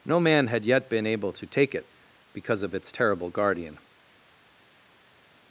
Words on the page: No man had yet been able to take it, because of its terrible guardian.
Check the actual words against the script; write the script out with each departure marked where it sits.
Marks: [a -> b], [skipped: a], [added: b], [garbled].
No man had yet been able to take it, because of its terrible guardian.